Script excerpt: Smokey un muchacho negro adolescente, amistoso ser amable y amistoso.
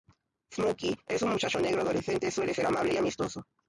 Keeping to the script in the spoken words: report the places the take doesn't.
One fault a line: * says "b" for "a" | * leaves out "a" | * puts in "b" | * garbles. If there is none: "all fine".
* puts in "es"
* says "suele" for "amistoso"